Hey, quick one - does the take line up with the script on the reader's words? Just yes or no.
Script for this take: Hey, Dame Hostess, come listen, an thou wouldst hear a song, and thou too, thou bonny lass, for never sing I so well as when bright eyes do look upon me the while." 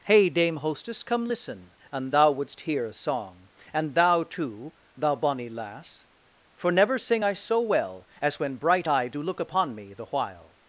no